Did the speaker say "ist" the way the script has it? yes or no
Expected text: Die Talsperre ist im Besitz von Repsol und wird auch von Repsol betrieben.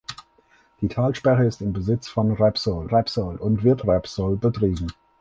yes